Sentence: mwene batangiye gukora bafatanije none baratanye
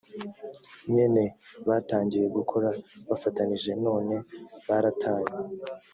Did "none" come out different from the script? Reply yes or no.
no